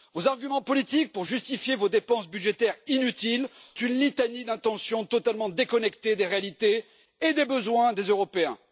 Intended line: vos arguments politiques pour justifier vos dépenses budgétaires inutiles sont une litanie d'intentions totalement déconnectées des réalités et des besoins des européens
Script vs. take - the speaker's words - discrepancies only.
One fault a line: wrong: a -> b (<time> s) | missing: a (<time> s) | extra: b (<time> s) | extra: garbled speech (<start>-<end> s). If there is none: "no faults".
missing: sont (3.5 s)